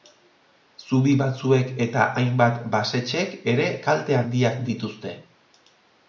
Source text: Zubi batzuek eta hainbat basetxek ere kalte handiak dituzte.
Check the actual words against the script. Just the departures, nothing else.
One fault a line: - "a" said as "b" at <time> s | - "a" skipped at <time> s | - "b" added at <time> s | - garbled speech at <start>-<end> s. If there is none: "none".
none